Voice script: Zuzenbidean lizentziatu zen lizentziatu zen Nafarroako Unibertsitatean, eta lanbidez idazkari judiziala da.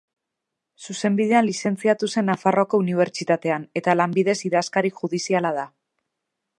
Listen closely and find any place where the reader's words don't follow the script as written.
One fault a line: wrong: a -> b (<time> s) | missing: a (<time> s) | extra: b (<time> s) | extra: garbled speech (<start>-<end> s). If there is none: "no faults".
missing: lizentziatu zen (2.3 s)